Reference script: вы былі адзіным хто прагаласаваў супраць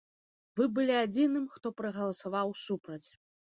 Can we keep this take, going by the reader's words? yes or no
yes